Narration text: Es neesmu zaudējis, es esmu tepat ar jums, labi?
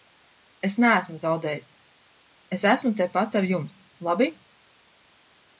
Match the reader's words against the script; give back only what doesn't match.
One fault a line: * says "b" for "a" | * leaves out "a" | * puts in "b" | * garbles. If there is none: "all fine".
all fine